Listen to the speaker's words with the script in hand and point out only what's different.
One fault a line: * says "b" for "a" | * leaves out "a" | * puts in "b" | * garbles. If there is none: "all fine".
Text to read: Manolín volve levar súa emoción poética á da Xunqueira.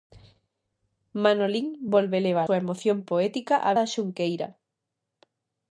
all fine